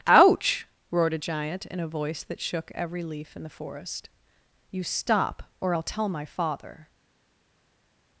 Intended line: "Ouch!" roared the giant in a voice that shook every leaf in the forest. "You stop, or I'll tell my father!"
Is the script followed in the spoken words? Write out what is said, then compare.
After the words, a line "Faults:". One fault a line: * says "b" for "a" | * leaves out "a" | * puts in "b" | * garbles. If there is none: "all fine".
"Ouch!" roared a giant in a voice that shook every leaf in the forest. "You stop, or I'll tell my father!"
Faults:
* says "a" for "the"